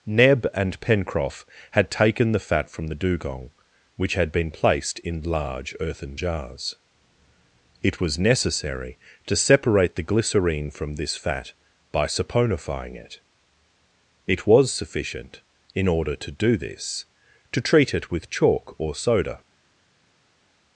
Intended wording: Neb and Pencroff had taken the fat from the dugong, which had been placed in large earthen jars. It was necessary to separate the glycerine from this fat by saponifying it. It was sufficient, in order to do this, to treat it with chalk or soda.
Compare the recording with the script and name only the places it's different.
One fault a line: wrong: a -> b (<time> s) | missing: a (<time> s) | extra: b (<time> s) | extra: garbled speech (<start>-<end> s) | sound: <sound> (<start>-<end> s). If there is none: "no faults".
no faults